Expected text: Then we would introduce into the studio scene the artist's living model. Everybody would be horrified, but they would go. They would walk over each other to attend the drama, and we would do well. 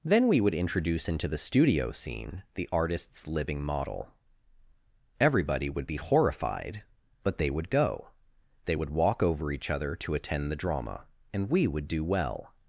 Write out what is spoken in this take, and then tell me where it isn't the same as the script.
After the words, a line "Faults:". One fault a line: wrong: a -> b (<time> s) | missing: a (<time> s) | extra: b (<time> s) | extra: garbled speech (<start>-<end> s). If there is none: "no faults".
Then we would introduce into the studio scene the artist's living model. Everybody would be horrified, but they would go. They would walk over each other to attend the drama, and we would do well.
Faults:
no faults